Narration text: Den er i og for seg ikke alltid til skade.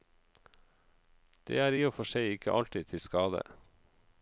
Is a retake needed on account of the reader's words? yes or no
yes